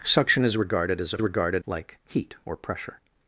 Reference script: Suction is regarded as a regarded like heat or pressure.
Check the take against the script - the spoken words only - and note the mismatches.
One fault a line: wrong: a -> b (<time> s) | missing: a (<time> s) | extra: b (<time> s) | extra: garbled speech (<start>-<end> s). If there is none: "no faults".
no faults